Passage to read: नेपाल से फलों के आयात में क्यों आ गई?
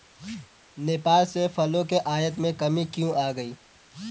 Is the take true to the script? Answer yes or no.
no